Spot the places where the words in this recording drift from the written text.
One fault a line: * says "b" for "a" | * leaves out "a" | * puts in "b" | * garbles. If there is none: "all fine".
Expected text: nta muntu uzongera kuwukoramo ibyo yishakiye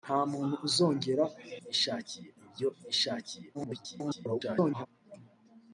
* says "yishakiye" for "kuwukoramo"
* garbles